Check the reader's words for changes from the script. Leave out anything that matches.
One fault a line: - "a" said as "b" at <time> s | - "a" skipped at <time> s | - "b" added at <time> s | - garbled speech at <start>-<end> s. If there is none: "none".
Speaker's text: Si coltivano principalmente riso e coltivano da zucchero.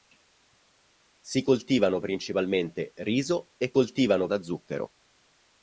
none